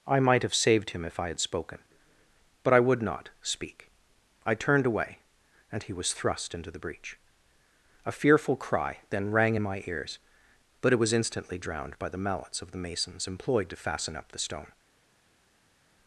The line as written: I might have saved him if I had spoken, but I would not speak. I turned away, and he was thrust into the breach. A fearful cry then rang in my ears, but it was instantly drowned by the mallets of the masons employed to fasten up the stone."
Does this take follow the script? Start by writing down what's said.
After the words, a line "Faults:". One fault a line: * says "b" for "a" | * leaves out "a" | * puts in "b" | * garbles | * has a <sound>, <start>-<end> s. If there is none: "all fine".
I might have saved him if I had spoken, but I would not speak. I turned away, and he was thrust into the breach. A fearful cry then rang in my ears, but it was instantly drowned by the mallets of the masons employed to fasten up the stone."
Faults:
all fine